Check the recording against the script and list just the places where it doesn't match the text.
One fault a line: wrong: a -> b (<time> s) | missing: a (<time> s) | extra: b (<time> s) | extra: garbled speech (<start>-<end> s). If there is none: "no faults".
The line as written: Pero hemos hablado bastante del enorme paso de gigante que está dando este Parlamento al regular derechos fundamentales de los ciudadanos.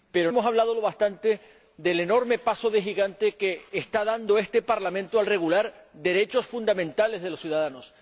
no faults